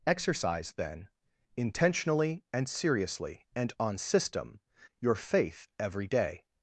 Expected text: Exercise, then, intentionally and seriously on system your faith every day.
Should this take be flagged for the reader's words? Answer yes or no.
yes